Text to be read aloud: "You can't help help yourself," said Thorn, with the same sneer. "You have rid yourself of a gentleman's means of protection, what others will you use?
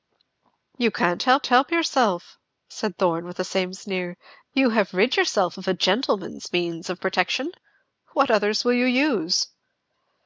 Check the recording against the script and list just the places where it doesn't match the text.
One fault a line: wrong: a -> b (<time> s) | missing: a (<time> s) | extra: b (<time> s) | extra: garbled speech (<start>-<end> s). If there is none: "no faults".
no faults